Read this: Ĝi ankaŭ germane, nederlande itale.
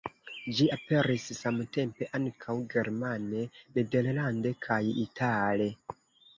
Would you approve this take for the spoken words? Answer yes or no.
no